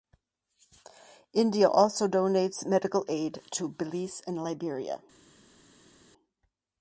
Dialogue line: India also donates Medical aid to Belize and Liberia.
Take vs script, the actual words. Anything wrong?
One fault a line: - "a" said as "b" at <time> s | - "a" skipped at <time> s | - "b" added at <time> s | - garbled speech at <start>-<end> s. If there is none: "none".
none